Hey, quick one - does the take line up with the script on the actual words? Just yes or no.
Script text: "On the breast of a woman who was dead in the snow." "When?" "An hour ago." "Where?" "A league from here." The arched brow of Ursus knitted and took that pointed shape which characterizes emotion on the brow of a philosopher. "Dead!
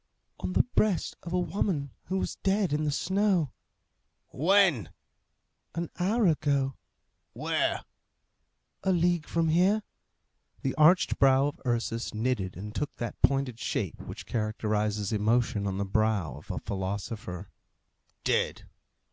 yes